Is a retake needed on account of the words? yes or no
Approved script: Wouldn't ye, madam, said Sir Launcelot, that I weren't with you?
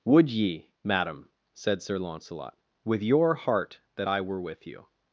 yes